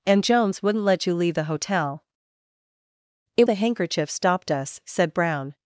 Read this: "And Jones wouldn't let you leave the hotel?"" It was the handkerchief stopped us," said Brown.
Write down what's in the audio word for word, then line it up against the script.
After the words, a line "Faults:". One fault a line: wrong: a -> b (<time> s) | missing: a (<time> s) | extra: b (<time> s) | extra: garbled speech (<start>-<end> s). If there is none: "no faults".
"And Jones wouldn't let you leave the hotel?"" It the handkerchief stopped us," said Brown.
Faults:
missing: was (3.5 s)